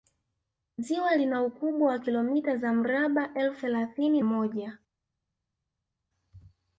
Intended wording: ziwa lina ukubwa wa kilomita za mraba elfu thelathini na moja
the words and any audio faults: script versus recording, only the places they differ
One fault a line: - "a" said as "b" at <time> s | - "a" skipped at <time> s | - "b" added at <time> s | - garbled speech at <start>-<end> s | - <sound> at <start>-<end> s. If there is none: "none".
- "na" skipped at 4.2 s